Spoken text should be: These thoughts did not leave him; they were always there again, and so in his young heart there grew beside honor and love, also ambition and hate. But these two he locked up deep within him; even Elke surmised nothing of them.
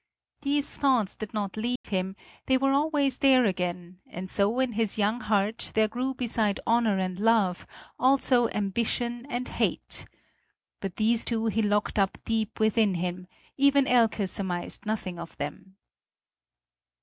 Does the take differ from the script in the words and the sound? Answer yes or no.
yes